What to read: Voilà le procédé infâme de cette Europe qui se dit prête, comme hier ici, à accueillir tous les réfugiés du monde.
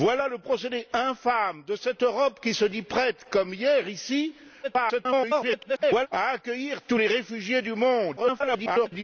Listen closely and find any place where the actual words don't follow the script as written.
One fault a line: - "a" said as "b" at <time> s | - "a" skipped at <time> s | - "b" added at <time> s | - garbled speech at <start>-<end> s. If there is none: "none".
- garbled speech at 4.6-6.1 s
- garbled speech at 8.2-9.0 s